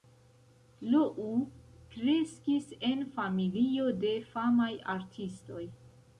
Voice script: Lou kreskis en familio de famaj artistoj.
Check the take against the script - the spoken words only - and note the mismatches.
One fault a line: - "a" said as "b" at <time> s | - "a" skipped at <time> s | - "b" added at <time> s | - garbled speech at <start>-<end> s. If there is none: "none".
none